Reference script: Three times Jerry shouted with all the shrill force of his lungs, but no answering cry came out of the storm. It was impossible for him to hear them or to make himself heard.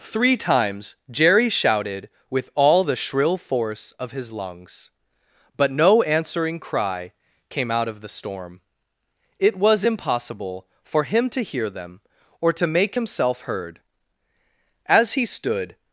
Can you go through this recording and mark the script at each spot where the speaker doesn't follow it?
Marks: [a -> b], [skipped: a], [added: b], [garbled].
Three times Jerry shouted with all the shrill force of his lungs, but no answering cry came out of the storm. It was impossible for him to hear them or to make himself heard. [added: As he stood]